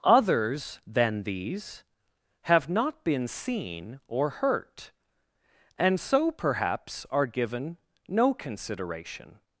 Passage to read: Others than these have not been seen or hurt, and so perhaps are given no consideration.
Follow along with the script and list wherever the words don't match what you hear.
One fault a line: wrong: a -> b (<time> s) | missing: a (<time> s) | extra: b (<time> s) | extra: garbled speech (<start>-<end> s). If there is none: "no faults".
no faults